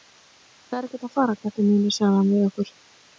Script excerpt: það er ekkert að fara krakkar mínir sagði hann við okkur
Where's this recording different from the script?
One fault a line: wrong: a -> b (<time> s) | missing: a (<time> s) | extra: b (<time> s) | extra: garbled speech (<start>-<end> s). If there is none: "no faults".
no faults